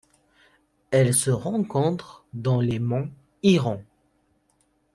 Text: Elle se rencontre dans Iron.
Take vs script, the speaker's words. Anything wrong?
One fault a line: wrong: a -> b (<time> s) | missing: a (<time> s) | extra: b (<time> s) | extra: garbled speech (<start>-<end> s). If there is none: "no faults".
extra: les monts (2.6 s)